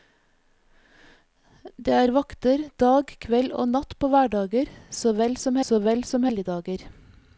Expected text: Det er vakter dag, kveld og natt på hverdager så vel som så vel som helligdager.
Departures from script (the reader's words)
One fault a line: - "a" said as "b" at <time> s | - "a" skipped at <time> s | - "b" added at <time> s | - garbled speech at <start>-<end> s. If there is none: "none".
none